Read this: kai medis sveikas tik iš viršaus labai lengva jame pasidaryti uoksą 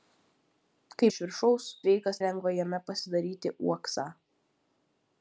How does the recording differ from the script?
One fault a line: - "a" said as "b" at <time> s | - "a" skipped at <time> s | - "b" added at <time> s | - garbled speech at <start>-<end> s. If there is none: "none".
- "medis sveikas tik" skipped at 1.1 s
- "labai" said as "sveikas" at 1.8 s